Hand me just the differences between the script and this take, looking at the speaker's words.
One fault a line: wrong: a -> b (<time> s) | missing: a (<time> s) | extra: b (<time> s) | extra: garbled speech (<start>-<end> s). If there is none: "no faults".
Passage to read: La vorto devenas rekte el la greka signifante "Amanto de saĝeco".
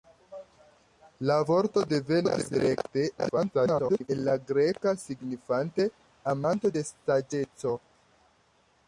extra: garbled speech (3.2-4.1 s)